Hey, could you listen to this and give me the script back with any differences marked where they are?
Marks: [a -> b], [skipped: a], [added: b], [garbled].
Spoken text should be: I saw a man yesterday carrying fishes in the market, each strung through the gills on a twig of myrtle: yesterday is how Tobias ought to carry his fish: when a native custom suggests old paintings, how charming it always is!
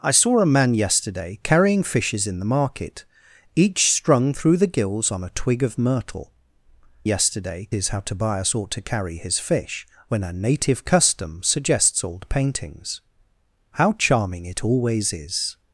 I saw a man yesterday carrying fishes in the market, each strung through the gills on a twig of myrtle: yesterday is how Tobias ought to carry his fish: when a native custom suggests old paintings, how charming it always is!